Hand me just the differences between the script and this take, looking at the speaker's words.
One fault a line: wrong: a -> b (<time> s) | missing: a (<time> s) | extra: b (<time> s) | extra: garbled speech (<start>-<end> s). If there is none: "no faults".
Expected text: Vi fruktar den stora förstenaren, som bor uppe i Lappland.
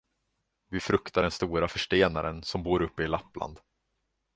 no faults